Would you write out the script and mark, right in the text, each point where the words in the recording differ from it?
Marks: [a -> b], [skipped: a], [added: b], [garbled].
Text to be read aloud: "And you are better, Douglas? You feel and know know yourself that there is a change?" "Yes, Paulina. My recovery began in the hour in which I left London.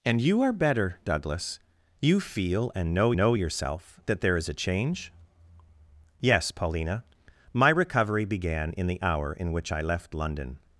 "And you are better, Douglas? You feel and know know yourself that there is a change?" "Yes, Paulina. My recovery began in the hour in which I left London.